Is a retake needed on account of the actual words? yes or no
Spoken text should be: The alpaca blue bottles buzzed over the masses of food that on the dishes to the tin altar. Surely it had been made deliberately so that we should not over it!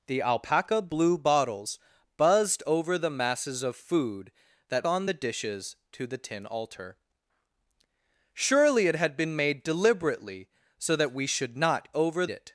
no